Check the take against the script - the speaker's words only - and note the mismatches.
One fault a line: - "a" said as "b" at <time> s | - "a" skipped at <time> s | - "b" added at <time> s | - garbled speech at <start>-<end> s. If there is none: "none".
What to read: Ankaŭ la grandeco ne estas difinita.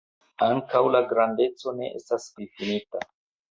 none